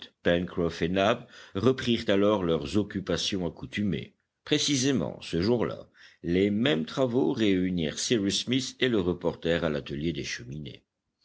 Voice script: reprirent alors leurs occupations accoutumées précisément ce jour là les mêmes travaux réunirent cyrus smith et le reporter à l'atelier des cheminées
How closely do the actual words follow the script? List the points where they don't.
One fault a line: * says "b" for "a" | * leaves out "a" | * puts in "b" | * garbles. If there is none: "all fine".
all fine